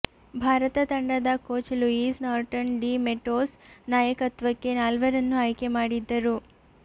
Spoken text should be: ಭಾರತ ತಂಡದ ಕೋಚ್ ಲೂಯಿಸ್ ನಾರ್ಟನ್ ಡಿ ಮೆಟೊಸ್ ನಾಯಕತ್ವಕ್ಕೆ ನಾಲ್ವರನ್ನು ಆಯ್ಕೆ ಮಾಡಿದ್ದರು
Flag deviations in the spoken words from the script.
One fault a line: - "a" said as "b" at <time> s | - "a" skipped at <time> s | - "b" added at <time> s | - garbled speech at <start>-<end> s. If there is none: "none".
none